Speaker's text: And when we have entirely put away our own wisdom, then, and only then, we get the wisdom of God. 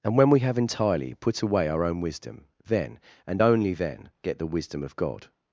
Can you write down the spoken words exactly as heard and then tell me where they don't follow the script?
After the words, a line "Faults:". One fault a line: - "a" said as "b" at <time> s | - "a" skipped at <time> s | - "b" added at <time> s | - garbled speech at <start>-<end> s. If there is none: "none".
And when we have entirely put away our own wisdom, then, and only then, get the wisdom of God.
Faults:
- "we" skipped at 4.1 s